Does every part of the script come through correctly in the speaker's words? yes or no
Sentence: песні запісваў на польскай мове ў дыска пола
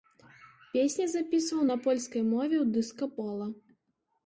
yes